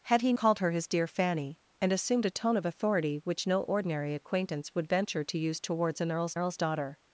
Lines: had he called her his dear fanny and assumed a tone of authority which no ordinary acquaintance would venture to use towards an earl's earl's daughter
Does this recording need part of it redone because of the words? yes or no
no